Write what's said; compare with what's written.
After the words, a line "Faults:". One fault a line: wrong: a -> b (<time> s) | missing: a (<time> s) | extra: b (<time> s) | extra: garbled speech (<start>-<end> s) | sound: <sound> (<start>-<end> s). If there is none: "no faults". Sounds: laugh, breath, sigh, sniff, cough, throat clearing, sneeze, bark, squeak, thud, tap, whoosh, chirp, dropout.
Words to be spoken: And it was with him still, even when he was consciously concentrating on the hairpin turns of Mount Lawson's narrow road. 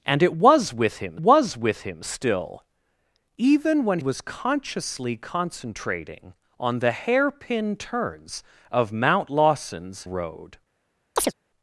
And it was with him was with him still, even when was consciously concentrating on the hairpin turns of Mount Lawson's road.
Faults:
extra: was with him (1.2 s)
missing: he (4.0 s)
missing: narrow (10.1 s)
sound: chirp (11.2-11.3 s)